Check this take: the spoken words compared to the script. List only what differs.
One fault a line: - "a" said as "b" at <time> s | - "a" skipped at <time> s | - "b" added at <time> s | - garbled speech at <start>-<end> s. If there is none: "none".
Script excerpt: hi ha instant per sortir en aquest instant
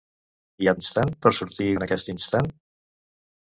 none